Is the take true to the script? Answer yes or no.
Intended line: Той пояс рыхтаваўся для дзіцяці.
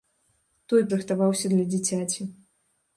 no